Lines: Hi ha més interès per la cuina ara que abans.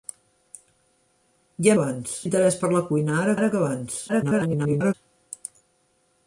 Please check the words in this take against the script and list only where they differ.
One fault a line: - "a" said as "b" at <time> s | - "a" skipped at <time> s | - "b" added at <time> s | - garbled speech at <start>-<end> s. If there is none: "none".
- "més" said as "abans" at 1.8 s
- "ara" added at 3.4 s
- garbled speech at 4.1-4.9 s